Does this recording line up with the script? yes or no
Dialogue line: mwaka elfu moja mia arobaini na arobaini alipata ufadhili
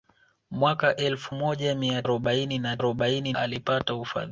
yes